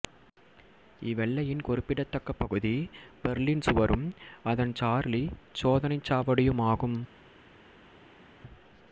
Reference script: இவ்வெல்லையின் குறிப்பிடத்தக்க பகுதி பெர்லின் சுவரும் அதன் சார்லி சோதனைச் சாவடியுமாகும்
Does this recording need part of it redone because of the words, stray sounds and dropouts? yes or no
no